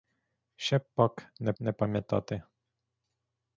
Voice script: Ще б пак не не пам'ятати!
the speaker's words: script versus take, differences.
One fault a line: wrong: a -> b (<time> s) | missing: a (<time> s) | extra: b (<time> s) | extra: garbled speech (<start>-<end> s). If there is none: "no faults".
no faults